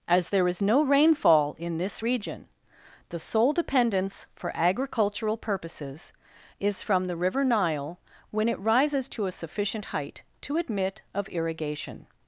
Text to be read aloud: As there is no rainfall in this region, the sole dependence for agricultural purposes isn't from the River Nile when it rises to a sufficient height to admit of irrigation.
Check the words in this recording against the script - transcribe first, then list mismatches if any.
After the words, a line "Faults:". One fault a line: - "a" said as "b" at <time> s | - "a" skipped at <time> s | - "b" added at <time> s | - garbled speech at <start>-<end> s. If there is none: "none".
As there is no rainfall in this region, the sole dependence for agricultural purposes is from the River Nile when it rises to a sufficient height to admit of irrigation.
Faults:
- "isn't" said as "is" at 6.6 s